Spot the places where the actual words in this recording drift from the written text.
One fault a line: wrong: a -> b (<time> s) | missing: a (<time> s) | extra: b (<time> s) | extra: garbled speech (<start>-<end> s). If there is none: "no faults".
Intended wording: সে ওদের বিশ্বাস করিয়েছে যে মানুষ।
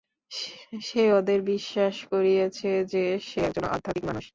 extra: সে একজন আধ্যাত্মিক (3.2 s)